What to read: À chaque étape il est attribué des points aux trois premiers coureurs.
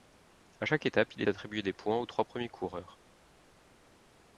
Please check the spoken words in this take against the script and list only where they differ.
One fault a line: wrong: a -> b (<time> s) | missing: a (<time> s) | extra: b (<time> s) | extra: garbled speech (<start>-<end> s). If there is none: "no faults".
missing: est (1.2 s)